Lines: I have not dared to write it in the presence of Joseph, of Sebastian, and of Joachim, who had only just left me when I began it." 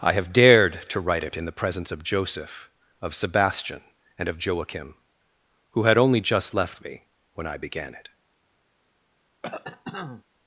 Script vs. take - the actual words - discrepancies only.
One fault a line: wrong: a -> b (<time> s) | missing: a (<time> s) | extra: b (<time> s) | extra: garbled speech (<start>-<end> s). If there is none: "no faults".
missing: not (0.3 s)